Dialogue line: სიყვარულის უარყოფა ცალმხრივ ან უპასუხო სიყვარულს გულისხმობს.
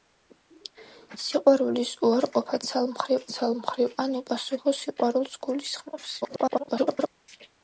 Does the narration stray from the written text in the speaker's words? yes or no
yes